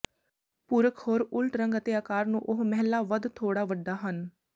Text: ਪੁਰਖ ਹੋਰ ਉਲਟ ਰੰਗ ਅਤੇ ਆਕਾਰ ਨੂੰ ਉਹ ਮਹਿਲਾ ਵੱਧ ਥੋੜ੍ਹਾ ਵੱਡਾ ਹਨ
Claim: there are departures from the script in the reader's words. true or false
false